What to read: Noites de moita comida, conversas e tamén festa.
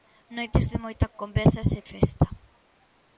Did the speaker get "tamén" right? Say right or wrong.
wrong